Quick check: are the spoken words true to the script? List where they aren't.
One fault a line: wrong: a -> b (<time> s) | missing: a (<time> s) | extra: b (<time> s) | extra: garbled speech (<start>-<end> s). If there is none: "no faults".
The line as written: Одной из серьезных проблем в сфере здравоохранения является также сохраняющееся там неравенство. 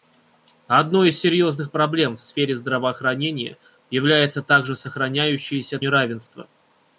missing: там (5.8 s)